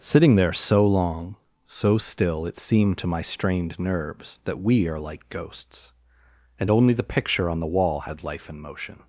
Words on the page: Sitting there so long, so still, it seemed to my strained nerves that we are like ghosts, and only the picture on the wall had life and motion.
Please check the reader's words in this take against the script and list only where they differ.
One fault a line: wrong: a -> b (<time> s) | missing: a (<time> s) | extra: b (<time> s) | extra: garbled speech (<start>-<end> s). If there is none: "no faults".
no faults